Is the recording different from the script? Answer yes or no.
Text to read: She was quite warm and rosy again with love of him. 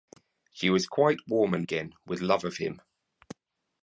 yes